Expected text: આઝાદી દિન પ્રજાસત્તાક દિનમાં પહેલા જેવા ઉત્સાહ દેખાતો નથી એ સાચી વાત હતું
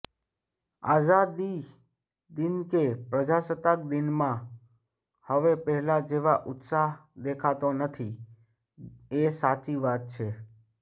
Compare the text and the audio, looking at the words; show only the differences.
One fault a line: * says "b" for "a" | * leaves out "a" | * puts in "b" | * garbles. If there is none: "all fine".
* puts in "કે"
* puts in "હવે"
* says "છે" for "હતું"